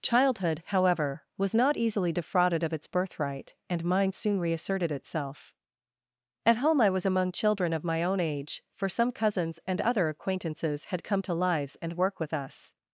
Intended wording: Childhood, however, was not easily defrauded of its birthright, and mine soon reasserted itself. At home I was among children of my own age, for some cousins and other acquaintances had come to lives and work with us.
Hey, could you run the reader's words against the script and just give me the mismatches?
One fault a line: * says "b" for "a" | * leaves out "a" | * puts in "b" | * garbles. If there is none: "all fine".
all fine